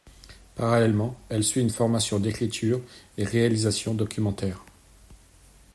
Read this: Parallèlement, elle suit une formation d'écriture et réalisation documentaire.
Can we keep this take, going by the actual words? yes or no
yes